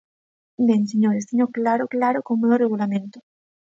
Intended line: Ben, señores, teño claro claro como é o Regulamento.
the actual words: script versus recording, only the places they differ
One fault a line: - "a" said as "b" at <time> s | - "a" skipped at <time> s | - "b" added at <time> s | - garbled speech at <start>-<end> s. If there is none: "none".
none